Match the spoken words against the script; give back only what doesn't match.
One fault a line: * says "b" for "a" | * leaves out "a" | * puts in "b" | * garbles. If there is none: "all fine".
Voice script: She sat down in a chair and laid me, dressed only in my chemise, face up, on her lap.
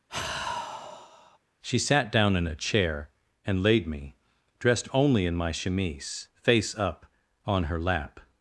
all fine